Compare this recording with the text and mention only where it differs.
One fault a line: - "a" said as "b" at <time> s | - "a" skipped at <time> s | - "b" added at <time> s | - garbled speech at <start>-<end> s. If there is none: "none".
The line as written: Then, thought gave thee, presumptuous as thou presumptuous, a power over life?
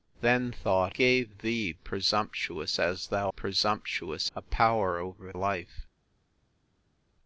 none